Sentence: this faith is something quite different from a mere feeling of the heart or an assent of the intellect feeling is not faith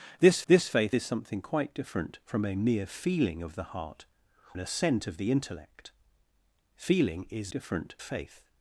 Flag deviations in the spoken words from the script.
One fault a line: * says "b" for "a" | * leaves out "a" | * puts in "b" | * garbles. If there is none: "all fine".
* puts in "this"
* leaves out "or"
* says "different" for "not"